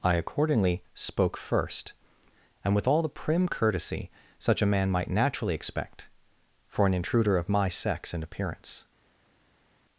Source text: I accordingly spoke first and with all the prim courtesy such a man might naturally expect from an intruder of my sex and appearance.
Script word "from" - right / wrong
wrong